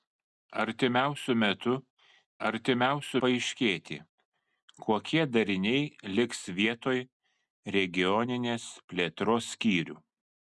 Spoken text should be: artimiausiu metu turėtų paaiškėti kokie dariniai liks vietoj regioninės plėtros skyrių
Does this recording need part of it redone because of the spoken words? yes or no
yes